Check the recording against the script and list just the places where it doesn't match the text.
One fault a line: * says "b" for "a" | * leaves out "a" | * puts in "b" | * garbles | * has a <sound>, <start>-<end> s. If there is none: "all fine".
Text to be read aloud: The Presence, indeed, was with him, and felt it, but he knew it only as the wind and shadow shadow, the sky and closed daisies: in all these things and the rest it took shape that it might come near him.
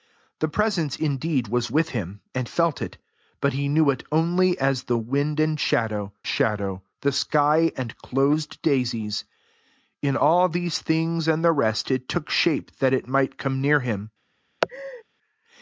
* has a laugh, 14.6-15.0 s